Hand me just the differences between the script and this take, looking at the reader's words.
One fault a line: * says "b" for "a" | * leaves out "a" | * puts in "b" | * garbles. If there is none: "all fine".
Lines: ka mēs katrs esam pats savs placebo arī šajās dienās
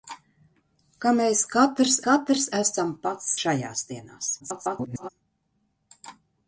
* puts in "katrs"
* leaves out "savs placebo arī"
* garbles